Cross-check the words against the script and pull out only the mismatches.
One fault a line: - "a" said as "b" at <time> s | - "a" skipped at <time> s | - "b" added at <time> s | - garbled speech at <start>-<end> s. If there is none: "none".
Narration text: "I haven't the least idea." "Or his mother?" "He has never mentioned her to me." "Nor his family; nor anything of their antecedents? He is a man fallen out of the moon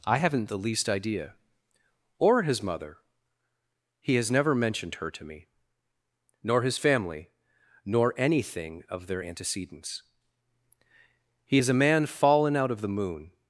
none